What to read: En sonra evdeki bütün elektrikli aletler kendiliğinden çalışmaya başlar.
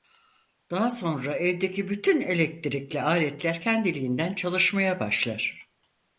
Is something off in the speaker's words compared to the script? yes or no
yes